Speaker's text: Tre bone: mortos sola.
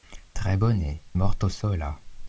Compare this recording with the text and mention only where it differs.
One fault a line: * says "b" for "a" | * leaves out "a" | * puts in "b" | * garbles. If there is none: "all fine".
all fine